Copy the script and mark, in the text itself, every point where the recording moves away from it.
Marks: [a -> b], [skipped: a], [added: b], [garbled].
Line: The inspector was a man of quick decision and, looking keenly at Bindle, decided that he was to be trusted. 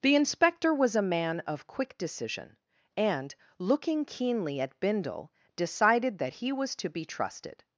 The inspector was a man of quick decision and, looking keenly at Bindle, decided that he was to be trusted.